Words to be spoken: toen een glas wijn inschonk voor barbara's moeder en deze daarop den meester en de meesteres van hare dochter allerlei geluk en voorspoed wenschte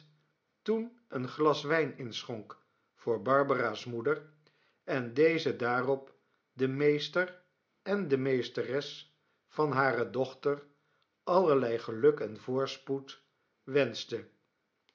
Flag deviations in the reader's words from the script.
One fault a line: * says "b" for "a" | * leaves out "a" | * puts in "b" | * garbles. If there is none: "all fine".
all fine